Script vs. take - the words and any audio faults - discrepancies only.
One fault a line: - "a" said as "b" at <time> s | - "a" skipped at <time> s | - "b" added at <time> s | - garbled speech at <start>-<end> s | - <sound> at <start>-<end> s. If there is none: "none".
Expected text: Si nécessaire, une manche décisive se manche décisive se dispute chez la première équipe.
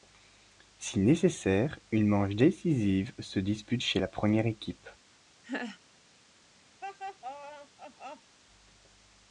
- "manche décisive se" skipped at 3.4 s
- laugh at 5.4-5.8 s
- laugh at 6.8-8.4 s